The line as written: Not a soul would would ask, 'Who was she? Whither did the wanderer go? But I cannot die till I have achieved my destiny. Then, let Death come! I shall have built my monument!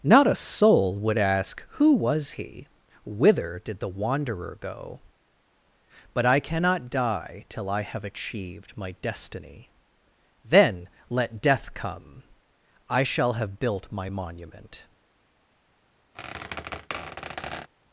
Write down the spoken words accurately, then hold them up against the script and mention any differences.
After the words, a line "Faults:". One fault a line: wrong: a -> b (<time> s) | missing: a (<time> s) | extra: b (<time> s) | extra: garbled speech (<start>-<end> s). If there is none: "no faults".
Not a soul would ask, 'Who was he? Whither did the wanderer go? But I cannot die till I have achieved my destiny. Then, let Death come! I shall have built my monument!
Faults:
missing: would (1.2 s)
wrong: she -> he (2.3 s)